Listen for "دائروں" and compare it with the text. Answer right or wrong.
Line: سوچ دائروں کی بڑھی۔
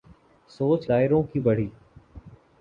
right